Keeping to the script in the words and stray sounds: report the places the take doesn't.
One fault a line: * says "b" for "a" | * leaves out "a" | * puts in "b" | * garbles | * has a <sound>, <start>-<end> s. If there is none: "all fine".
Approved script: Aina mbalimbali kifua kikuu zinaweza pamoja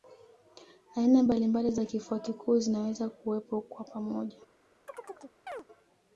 * puts in "za"
* puts in "kuwepo kwa"
* has a chirp, 4.9-5.6 s